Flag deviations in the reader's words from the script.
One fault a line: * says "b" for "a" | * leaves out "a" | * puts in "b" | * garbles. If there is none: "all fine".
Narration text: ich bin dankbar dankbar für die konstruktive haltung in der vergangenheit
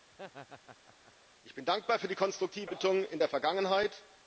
* leaves out "dankbar"